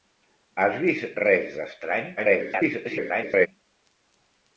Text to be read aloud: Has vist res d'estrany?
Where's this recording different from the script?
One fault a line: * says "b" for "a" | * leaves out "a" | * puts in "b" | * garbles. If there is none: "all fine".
* garbles